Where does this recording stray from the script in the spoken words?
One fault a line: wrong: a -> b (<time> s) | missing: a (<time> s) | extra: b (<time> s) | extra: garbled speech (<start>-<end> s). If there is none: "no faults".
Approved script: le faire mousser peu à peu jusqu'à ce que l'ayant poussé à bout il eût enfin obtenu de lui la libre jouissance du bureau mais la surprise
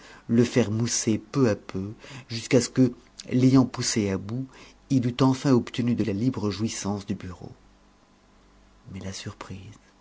missing: lui (6.0 s)